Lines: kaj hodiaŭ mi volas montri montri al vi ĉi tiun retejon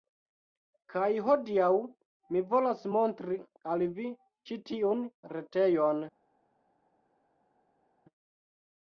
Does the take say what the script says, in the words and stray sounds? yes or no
no